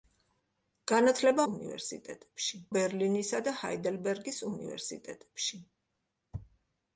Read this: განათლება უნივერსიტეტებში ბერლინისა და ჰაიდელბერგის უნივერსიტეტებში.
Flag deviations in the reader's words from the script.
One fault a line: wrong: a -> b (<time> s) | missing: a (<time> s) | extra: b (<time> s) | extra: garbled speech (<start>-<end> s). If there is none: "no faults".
no faults